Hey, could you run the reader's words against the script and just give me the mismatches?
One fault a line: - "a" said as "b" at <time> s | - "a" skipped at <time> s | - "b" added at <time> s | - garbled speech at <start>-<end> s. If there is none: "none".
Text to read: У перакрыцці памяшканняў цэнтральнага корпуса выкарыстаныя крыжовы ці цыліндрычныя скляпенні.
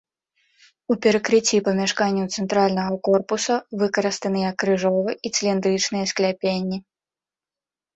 - "ці" said as "і" at 5.2 s